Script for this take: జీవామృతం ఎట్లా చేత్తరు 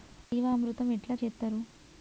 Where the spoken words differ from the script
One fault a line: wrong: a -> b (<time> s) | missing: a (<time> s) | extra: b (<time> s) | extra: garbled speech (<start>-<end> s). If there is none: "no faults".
no faults